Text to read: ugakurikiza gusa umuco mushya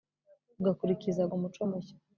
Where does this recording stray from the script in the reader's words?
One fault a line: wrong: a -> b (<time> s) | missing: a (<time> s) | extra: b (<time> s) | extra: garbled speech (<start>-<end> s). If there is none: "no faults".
missing: gusa (1.2 s)